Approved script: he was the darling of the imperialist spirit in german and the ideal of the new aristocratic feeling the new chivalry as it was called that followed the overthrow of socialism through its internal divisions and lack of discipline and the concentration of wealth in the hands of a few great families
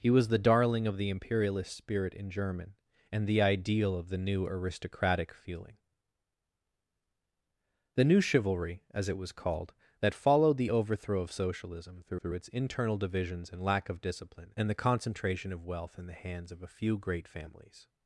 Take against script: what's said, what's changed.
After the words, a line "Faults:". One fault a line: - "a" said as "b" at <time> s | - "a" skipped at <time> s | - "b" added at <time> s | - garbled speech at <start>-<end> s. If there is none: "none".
he was the darling of the imperialist spirit in german and the ideal of the new aristocratic feeling the new chivalry as it was called that followed the overthrow of socialism through through its internal divisions and lack of discipline and the concentration of wealth in the hands of a few great families
Faults:
- "through" added at 12.2 s